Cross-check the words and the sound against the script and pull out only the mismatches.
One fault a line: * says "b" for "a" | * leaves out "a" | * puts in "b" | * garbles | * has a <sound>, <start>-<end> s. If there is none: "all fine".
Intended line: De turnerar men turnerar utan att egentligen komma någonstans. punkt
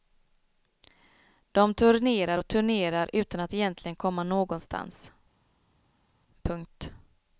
* says "och" for "men"